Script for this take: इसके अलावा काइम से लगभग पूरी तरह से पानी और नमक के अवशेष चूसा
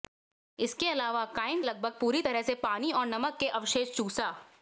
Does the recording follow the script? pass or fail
fail